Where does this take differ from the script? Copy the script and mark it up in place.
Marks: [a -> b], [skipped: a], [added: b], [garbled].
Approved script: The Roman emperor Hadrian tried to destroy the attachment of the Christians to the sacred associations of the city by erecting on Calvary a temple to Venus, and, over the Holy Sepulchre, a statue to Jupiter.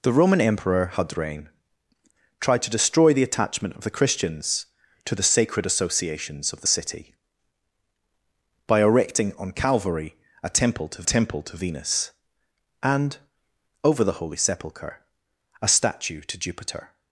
The Roman emperor Hadrian tried to destroy the attachment of the Christians to the sacred associations of the city by erecting on Calvary a temple to [added: temple to] Venus, and, over the Holy Sepulchre, a statue to Jupiter.